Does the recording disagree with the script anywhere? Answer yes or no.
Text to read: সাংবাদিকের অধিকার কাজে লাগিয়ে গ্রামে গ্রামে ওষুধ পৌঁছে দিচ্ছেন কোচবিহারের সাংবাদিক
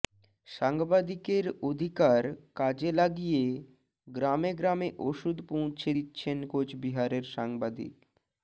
no